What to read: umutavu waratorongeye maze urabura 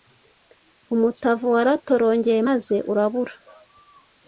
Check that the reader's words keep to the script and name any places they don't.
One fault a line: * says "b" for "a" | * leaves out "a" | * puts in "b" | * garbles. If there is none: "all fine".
all fine